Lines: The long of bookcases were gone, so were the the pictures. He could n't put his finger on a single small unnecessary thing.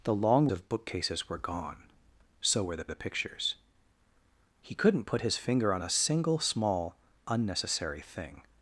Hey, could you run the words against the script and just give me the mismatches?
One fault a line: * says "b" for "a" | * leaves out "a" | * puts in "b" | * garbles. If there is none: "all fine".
all fine